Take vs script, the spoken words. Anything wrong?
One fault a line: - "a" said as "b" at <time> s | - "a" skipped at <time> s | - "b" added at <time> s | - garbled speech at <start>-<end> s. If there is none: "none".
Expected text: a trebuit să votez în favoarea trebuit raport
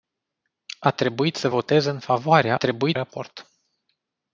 none